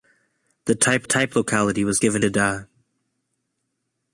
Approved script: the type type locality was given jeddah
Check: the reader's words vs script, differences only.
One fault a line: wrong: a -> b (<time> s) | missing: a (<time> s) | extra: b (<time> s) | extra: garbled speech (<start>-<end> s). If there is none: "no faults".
no faults